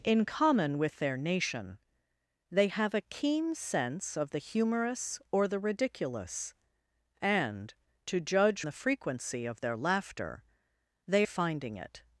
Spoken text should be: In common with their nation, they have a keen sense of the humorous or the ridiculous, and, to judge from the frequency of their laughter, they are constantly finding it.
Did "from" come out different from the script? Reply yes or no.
yes